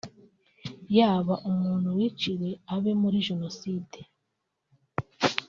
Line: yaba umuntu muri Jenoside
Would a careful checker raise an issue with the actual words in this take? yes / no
yes